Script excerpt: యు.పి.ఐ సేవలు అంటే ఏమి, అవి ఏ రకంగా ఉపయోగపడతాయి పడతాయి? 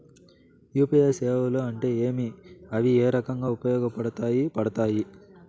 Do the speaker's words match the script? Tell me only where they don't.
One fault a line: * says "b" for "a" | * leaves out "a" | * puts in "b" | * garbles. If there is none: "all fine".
all fine